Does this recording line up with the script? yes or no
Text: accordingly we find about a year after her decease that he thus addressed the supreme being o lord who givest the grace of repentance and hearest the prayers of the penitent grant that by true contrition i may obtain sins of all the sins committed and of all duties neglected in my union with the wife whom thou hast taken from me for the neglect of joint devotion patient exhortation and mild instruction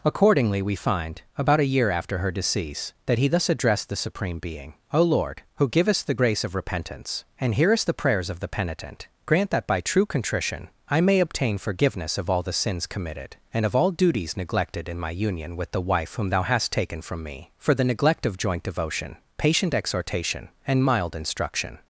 no